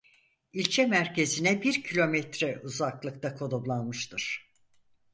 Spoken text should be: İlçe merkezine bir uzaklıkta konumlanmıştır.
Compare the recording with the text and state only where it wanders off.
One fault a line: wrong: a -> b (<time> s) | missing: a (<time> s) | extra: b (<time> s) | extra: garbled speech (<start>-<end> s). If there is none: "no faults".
extra: kilometre (1.8 s)